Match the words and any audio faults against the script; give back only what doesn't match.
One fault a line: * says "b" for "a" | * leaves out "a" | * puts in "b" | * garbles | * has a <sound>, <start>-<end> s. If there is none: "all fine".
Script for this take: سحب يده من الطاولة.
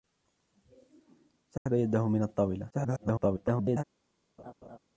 * has a dropout, 1.6-1.7 s
* garbles
* has a laugh, 4.4-4.8 s